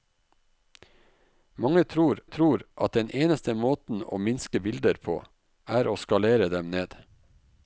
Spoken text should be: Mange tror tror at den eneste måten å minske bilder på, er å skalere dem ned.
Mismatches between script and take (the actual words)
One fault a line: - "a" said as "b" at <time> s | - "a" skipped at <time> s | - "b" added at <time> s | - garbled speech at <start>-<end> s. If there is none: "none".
none